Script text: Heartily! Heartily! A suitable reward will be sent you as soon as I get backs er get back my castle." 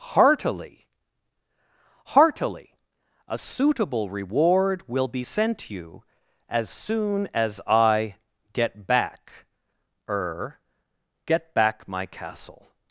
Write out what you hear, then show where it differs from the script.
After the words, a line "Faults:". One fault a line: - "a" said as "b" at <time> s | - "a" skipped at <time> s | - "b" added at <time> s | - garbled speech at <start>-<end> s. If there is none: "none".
Heartily! Heartily! A suitable reward will be sent you as soon as I get back er get back my castle."
Faults:
- "backs" said as "back" at 8.9 s